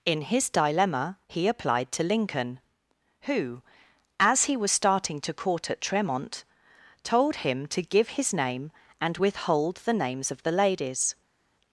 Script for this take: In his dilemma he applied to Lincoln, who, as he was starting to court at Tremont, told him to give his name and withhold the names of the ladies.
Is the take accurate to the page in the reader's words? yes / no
yes